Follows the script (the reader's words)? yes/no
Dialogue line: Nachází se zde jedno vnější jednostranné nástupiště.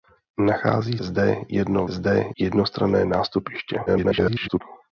no